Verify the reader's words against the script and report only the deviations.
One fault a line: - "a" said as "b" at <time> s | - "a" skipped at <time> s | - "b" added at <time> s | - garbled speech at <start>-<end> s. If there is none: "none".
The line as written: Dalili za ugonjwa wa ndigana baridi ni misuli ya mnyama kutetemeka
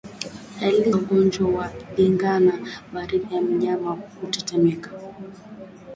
- "za" skipped at 0.9 s
- "ni misuli" skipped at 3.3 s